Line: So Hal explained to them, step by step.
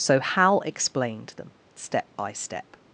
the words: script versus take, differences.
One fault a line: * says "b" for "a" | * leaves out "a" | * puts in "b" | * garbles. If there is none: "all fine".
* leaves out "to"